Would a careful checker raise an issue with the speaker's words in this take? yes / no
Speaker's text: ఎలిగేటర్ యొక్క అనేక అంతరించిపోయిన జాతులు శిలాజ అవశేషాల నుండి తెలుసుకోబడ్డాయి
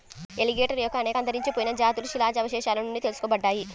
no